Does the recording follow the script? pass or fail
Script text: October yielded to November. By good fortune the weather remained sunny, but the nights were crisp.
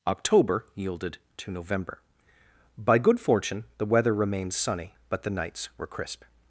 pass